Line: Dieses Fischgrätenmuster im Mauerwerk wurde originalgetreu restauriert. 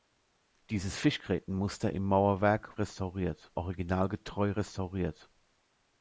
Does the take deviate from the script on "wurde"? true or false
true